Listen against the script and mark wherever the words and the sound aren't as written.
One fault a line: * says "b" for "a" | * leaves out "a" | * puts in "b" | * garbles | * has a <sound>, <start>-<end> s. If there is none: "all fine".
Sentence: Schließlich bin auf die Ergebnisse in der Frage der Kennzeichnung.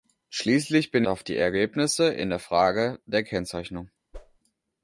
* has a whoosh, 4.1-4.4 s